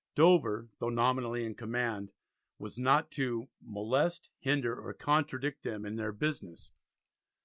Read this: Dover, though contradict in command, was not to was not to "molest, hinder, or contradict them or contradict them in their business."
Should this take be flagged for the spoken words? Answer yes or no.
yes